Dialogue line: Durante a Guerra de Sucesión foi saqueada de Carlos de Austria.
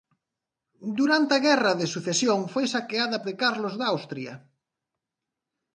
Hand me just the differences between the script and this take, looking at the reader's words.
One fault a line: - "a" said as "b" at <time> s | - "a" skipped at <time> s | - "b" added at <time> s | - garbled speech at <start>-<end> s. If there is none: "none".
none